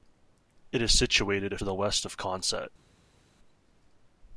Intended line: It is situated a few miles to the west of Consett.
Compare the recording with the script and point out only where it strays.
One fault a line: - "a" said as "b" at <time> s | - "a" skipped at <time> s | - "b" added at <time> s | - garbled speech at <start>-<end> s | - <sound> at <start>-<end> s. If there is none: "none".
- "few miles" skipped at 1.6 s